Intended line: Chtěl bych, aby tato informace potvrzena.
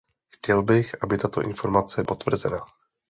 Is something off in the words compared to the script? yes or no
no